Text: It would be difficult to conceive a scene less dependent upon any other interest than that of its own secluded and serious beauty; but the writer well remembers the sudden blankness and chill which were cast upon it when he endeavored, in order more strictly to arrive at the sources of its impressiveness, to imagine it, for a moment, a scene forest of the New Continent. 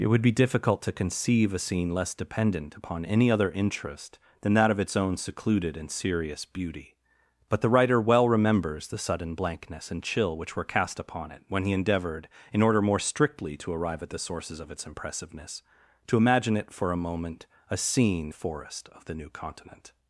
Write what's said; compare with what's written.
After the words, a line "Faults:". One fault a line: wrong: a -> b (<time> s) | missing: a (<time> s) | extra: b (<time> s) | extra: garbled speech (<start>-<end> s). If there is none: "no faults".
It would be difficult to conceive a scene less dependent upon any other interest than that of its own secluded and serious beauty; but the writer well remembers the sudden blankness and chill which were cast upon it when he endeavored, in order more strictly to arrive at the sources of its impressiveness, to imagine it, for a moment, a scene forest of the New Continent.
Faults:
no faults